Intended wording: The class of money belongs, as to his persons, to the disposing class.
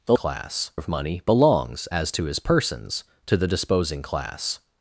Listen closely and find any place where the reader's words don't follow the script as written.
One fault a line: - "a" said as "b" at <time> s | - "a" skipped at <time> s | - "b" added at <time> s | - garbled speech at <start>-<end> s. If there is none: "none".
none